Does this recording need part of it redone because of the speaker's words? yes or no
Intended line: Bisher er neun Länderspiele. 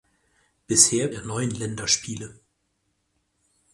no